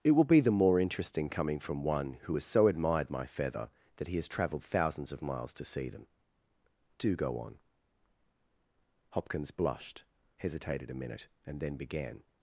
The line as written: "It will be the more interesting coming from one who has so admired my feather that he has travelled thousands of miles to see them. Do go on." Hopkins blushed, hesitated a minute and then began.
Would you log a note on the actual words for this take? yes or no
no